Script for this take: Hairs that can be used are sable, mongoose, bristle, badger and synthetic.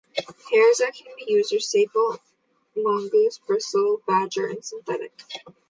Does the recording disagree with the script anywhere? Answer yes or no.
no